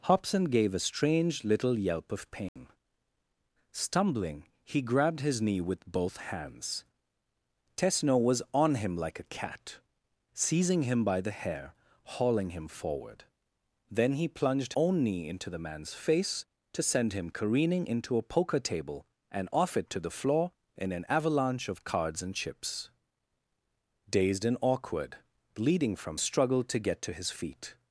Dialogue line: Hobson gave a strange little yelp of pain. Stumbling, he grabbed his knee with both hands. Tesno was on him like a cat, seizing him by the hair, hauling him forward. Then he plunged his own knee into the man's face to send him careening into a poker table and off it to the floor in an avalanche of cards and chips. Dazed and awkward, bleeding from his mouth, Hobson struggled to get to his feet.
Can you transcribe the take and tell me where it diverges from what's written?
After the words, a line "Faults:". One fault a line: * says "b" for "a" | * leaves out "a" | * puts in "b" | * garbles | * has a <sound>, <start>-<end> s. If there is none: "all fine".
Hobson gave a strange little yelp of pain. Stumbling, he grabbed his knee with both hands. Tesno was on him like a cat, seizing him by the hair, hauling him forward. Then he plunged own knee into the man's face to send him careening into a poker table and off it to the floor in an avalanche of cards and chips. Dazed and awkward, bleeding from struggled to get to his feet.
Faults:
* has a dropout, 2.5-2.6 s
* leaves out "his"
* leaves out "his mouth Hobson"